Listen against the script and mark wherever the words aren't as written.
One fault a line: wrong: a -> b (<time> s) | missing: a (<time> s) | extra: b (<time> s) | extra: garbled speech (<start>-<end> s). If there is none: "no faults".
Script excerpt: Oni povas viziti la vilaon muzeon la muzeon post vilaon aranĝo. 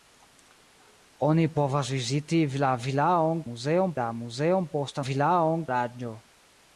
no faults